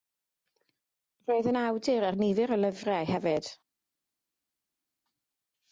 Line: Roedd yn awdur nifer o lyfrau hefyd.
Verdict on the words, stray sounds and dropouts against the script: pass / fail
fail